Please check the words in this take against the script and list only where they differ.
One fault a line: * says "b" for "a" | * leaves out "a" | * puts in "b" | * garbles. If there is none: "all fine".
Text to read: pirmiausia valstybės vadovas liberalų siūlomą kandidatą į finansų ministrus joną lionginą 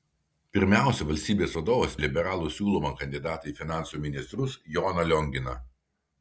all fine